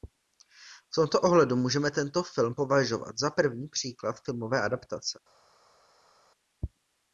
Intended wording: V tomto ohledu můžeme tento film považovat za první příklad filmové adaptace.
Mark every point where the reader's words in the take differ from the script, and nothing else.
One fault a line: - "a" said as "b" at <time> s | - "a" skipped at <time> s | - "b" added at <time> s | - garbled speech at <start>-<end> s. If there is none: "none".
none